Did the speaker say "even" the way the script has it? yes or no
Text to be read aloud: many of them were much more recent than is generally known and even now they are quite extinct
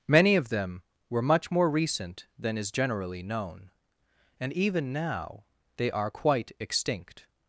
yes